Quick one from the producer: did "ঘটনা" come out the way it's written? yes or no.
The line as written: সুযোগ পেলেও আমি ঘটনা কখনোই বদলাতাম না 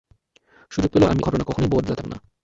yes